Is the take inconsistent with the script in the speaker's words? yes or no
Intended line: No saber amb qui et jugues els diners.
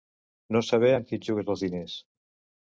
no